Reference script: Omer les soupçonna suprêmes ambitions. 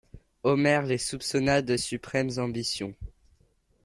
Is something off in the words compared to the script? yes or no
yes